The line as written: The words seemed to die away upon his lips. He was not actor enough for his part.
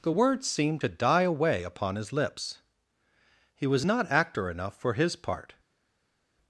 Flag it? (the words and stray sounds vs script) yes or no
no